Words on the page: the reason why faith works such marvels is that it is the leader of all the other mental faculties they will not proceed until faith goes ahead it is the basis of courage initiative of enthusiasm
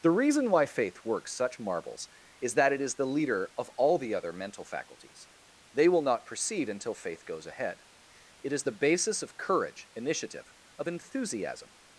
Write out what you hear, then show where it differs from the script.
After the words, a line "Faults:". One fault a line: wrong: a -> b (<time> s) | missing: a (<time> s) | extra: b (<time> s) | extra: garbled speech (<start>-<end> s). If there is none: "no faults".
the reason why faith works such marvels is that it is the leader of all the other mental faculties they will not proceed until faith goes ahead it is the basis of courage initiative of enthusiasm
Faults:
no faults